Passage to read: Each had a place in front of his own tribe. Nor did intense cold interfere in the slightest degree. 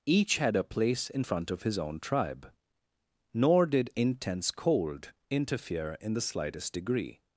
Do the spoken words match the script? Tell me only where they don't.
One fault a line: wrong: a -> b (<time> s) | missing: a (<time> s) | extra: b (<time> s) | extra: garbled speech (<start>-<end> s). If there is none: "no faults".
no faults